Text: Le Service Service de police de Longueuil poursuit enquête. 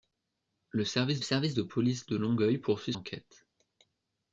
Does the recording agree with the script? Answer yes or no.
yes